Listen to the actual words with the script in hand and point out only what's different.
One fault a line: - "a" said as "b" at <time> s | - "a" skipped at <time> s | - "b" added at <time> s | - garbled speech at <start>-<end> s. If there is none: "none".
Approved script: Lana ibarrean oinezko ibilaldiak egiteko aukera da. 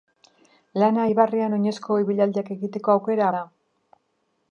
none